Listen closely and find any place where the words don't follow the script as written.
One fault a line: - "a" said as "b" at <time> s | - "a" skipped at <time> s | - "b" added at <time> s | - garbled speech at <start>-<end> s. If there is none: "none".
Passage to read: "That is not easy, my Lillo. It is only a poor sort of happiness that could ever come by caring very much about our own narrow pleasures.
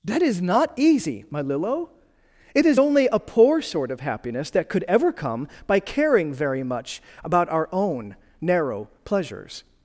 none